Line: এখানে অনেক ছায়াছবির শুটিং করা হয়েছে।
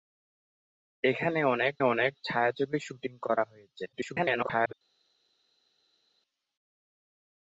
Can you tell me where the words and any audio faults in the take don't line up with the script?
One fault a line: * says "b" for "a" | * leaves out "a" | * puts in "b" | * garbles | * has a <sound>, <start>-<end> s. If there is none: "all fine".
* puts in "অনেক"
* garbles